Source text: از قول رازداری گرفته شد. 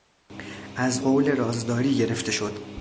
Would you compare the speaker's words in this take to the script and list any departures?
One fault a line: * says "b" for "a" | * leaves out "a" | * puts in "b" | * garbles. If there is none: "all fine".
all fine